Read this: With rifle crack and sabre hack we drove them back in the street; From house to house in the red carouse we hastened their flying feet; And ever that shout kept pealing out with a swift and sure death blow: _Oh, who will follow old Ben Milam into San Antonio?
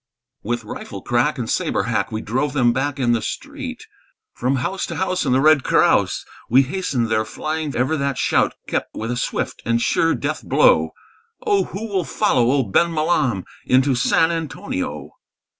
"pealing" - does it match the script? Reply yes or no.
no